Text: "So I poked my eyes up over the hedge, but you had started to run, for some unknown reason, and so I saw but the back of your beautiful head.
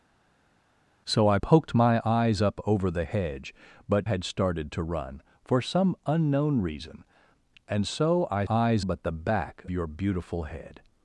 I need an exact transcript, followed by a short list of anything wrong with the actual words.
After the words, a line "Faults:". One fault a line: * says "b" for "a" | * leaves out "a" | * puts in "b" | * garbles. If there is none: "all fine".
"So I poked my eyes up over the hedge, but had started to run, for some unknown reason, and so I eyes but the back your beautiful head.
Faults:
* leaves out "you"
* says "eyes" for "saw"
* leaves out "of"